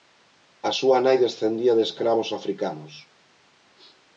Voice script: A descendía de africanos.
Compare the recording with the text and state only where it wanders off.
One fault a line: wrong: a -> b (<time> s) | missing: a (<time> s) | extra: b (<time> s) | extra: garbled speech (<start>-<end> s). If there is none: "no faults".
extra: súa nai (0.8 s)
extra: escravos (1.9 s)